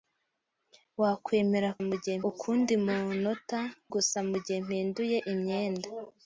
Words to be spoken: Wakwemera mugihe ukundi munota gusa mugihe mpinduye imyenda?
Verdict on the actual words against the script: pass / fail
pass